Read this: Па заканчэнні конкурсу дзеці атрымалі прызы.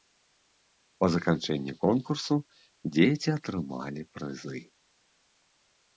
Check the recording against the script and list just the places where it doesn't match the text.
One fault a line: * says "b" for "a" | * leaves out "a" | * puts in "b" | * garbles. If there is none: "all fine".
all fine